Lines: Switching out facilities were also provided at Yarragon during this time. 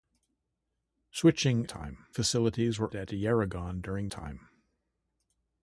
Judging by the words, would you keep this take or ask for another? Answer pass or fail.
fail